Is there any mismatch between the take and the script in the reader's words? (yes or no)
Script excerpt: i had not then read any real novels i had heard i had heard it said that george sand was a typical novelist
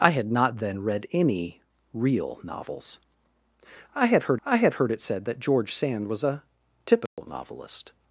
no